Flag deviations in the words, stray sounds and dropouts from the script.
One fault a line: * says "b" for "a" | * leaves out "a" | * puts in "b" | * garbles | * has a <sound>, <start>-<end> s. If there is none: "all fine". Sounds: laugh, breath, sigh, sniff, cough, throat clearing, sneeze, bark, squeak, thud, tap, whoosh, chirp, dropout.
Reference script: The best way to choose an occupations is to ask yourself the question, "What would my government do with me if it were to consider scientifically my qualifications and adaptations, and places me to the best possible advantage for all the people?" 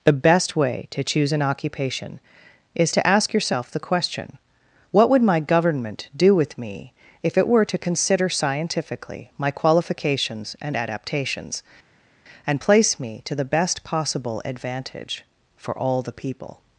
* says "occupation" for "occupations"
* says "place" for "places"